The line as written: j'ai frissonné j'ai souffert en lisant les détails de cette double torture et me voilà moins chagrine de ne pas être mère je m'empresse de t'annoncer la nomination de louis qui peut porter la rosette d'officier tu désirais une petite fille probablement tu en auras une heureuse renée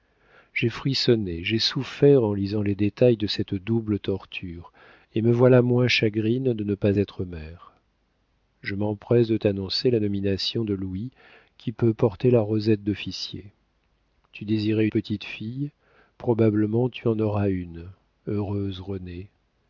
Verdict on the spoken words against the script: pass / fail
fail